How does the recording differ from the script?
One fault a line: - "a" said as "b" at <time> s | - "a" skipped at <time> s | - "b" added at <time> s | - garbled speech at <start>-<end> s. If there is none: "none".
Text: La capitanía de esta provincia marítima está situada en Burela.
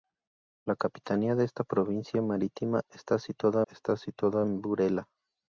- "está situada" added at 3.7 s